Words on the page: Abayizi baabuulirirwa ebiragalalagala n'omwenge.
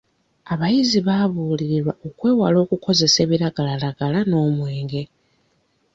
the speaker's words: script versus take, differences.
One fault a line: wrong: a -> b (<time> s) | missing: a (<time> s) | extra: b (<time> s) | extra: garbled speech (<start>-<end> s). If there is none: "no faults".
extra: okwewala okukozesa (2.1 s)